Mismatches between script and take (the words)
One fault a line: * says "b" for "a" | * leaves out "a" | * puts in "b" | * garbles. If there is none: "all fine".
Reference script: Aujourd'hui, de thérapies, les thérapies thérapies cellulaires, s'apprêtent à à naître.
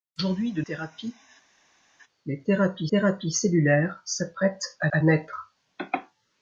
all fine